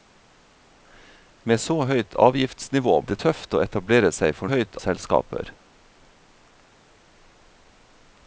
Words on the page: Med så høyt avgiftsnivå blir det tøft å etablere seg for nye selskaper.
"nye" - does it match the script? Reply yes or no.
no